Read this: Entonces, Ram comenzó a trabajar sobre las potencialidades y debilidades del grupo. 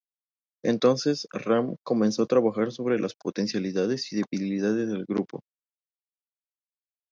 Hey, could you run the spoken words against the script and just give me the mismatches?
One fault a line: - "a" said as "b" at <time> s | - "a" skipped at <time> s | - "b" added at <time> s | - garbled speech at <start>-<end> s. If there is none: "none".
none